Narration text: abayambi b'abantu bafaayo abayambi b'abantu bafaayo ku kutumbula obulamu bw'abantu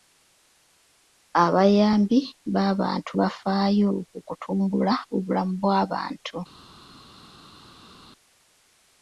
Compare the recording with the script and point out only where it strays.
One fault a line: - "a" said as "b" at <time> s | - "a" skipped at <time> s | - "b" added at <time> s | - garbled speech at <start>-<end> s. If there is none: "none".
- "abayambi b'abantu bafaayo" skipped at 3.9 s